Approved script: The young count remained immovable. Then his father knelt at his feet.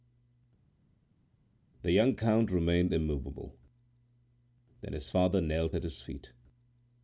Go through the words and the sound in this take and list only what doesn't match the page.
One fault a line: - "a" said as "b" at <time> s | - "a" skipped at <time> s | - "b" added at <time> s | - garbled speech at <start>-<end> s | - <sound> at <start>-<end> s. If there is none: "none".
none